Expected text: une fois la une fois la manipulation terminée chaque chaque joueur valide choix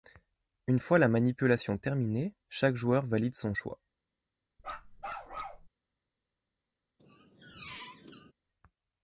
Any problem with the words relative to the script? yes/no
yes